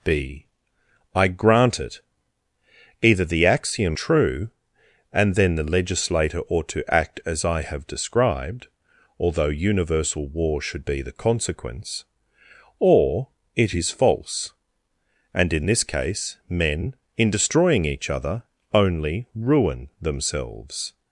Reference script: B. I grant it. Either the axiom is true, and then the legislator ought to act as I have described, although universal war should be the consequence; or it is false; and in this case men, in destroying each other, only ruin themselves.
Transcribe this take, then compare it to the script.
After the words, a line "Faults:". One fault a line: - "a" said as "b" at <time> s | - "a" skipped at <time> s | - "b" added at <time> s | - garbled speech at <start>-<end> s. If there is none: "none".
B. I grant it. Either the axiom true, and then the legislator ought to act as I have described, although universal war should be the consequence; or it is false; and in this case men, in destroying each other, only ruin themselves.
Faults:
- "is" skipped at 4.0 s